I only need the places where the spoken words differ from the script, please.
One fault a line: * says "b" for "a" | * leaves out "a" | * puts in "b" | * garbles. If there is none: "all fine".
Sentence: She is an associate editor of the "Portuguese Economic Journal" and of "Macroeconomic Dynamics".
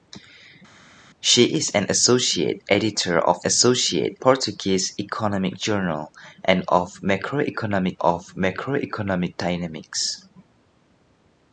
* says "associate" for "the"
* puts in "of Macroeconomic"